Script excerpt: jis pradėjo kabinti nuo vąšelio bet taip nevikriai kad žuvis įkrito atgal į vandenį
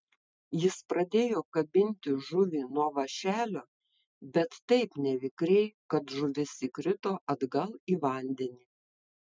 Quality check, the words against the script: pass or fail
fail